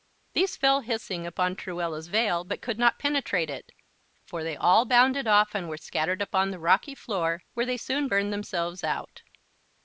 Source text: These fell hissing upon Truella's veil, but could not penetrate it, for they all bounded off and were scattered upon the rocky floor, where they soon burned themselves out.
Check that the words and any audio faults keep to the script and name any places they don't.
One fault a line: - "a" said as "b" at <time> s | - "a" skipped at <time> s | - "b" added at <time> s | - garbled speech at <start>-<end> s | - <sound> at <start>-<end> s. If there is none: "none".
none